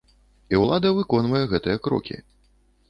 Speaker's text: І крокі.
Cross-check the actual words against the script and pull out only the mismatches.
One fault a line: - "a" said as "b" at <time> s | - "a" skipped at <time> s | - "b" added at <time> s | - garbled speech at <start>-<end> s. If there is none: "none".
- "ўлада выконвае гэтыя" added at 0.6 s